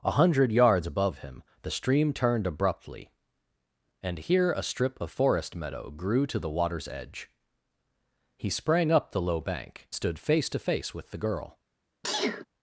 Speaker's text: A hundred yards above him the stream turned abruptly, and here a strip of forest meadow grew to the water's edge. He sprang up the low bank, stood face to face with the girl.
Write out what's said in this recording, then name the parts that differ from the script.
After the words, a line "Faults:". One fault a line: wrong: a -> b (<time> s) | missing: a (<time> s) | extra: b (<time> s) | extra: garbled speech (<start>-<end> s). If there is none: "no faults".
A hundred yards above him the stream turned abruptly, and here a strip of forest meadow grew to the water's edge. He sprang up the low bank, stood face to face with the girl.
Faults:
no faults